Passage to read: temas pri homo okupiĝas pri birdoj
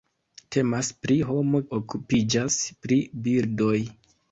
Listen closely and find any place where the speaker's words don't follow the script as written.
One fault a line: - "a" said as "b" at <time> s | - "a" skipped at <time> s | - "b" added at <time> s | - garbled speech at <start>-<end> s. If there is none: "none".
none